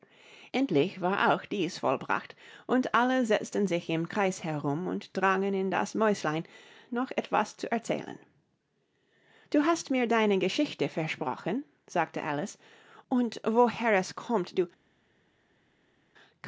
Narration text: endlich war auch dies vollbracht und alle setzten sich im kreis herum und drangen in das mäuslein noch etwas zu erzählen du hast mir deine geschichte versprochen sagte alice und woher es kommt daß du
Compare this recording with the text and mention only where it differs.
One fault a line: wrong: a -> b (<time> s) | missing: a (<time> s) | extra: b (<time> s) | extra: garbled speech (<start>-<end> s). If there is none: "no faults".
missing: daß (14.6 s)